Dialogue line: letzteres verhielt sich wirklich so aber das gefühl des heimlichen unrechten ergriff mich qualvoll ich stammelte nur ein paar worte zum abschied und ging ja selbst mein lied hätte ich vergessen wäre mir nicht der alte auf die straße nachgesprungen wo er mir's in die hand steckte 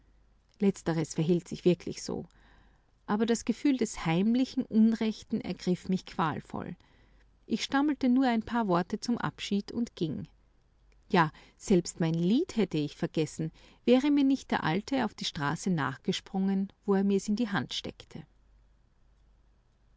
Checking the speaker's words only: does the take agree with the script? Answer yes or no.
yes